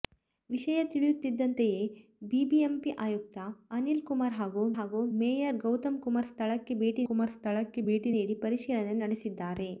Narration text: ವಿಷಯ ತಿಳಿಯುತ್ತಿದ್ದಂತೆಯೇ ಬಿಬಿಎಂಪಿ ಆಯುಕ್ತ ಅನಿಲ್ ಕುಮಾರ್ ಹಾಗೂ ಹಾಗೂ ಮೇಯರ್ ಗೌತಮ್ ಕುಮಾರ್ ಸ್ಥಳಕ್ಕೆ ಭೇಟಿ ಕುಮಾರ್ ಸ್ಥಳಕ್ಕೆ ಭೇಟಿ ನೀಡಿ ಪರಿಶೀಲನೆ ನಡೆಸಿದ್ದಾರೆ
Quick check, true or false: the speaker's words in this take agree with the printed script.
true